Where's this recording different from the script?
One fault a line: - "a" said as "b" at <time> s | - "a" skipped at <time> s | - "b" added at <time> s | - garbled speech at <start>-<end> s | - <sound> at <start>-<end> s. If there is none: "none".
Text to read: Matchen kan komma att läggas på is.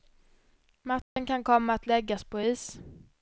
- dropout at 1.0-1.2 s